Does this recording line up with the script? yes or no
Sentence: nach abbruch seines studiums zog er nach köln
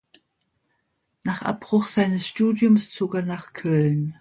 yes